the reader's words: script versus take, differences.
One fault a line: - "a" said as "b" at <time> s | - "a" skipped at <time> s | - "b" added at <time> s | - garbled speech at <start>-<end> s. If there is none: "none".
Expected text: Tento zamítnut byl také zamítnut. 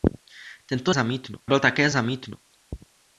none